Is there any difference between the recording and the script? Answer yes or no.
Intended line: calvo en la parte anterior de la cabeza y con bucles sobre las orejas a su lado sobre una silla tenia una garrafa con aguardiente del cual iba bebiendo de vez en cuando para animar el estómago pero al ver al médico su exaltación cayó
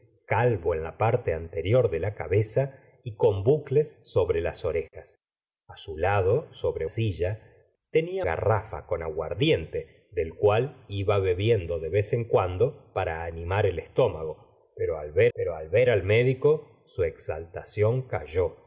yes